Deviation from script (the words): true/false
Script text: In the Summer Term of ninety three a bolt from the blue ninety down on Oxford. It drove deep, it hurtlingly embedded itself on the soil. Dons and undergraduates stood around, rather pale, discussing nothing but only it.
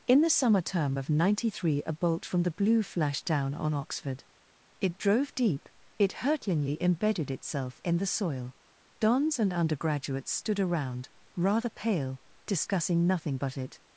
true